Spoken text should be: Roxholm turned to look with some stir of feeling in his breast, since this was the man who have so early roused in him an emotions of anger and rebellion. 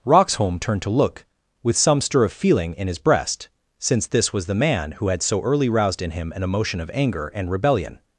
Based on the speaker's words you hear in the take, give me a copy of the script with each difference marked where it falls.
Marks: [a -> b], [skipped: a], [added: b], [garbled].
Roxholm turned to look with some stir of feeling in his breast, since this was the man who [have -> had] so early roused in him an [emotions -> emotion] of anger and rebellion.